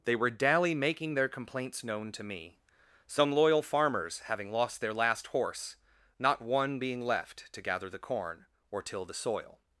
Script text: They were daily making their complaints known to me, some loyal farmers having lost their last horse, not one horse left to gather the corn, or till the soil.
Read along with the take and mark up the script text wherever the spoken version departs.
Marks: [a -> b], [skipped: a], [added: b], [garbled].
They were daily making their complaints known to me, some loyal farmers having lost their last horse, not one [horse -> being] left to gather the corn, or till the soil.